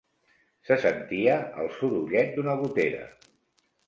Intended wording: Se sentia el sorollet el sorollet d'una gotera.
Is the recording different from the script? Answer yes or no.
yes